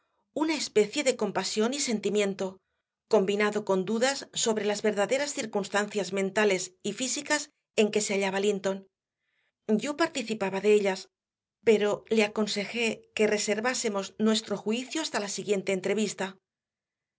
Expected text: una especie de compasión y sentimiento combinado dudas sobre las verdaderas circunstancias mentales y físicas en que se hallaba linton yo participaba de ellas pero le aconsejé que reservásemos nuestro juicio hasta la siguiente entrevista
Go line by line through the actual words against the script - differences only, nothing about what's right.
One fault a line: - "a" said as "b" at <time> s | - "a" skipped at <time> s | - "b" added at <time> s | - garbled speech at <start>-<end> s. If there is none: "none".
- "con" added at 3.6 s